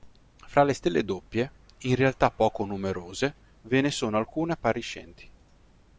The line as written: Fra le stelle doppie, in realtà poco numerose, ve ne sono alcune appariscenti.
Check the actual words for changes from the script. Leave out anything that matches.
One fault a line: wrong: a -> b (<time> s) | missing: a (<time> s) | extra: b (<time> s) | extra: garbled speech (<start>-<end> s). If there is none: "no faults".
no faults